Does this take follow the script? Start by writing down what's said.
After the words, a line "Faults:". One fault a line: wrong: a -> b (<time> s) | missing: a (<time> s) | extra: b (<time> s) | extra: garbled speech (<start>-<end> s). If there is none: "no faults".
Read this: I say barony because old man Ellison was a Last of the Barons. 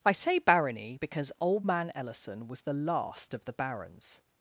I say barony because old man Ellison was the Last of the Barons.
Faults:
wrong: a -> the (2.6 s)